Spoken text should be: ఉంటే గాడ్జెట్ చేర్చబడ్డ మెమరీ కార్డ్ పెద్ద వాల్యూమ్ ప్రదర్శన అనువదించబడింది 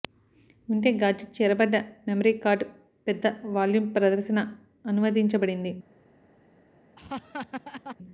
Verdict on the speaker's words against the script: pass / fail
pass